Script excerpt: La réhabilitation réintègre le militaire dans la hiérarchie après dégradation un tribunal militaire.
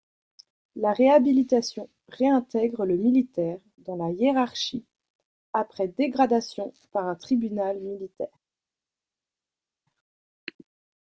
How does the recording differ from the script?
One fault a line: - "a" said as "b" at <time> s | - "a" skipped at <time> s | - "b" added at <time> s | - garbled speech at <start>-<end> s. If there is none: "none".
- "par" added at 6.9 s